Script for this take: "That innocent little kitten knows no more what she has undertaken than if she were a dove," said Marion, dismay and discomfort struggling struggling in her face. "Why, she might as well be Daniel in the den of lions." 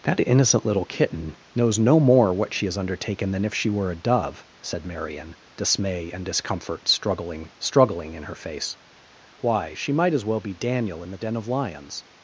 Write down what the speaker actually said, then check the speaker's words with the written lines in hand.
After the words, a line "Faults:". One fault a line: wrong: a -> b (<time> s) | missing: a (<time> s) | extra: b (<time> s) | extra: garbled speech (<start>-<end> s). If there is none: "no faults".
"That innocent little kitten knows no more what she has undertaken than if she were a dove," said Marion, dismay and discomfort struggling struggling in her face. "Why, she might as well be Daniel in the den of lions."
Faults:
no faults